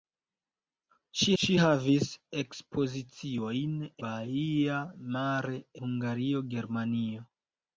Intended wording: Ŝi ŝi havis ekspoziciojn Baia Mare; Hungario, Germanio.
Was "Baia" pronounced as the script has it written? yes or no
yes